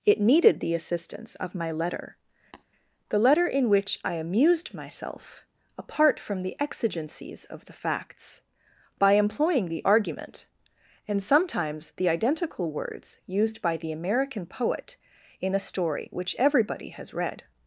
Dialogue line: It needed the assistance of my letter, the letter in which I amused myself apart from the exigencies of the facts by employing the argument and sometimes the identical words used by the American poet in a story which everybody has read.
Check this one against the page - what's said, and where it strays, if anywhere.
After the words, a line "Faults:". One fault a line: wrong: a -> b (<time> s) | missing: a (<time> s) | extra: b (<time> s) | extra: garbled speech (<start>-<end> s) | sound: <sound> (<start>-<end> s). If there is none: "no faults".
It needed the assistance of my letter, the letter in which I amused myself apart from the exigencies of the facts by employing the argument and sometimes the identical words used by the American poet in a story which everybody has read.
Faults:
sound: tap (2.5-2.6 s)